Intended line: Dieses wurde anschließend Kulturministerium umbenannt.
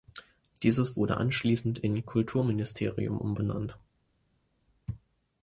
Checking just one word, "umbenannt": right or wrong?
right